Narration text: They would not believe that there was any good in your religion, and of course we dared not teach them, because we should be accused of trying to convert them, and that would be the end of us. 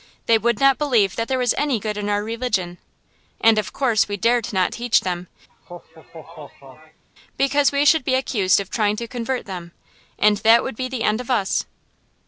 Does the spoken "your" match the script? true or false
false